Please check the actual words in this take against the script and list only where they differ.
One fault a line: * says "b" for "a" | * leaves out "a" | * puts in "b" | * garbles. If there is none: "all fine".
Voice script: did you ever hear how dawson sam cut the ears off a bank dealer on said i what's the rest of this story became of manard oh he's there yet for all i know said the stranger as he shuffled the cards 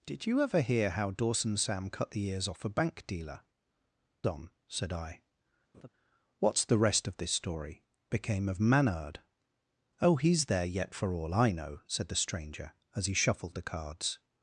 all fine